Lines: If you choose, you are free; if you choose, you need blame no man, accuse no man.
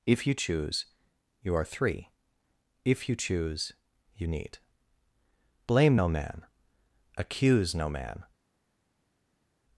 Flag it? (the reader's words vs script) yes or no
yes